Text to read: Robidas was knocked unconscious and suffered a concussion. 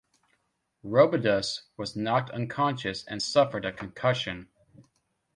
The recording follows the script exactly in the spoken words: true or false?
true